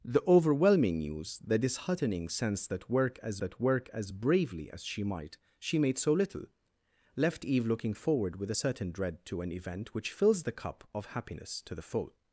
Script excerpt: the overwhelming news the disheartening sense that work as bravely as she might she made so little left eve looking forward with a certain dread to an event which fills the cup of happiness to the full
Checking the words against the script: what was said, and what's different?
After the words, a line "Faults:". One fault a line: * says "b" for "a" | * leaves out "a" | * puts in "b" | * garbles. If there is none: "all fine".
the overwhelming news the disheartening sense that work as that work as bravely as she might she made so little left eve looking forward with a certain dread to an event which fills the cup of happiness to the full
Faults:
* puts in "that work as"